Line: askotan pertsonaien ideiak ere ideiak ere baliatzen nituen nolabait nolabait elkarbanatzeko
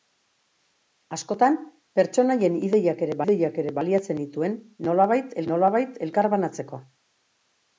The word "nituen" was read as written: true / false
true